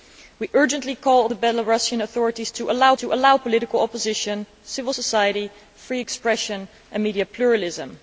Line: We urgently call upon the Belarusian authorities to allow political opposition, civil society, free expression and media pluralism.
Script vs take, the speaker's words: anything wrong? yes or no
yes